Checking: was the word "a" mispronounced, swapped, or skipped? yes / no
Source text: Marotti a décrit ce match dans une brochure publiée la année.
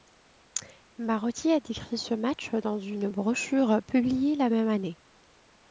no